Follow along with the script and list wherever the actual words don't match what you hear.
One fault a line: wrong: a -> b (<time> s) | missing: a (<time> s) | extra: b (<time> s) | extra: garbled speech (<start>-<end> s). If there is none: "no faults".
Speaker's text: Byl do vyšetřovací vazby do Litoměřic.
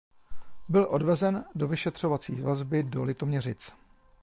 extra: odvezen (0.9 s)